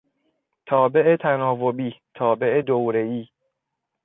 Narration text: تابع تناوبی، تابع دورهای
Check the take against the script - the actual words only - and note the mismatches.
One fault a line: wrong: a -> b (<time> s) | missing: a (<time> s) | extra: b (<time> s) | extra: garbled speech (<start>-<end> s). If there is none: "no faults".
no faults